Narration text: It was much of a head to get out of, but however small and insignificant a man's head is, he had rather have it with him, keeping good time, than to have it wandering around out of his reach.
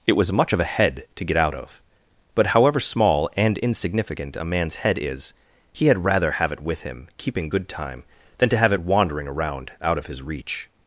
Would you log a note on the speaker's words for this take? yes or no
no